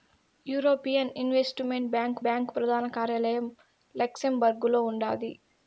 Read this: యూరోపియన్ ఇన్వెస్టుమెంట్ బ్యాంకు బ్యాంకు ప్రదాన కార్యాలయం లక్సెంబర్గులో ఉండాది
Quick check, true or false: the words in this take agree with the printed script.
true